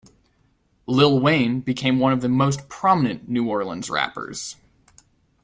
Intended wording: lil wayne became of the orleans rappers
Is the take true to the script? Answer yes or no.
no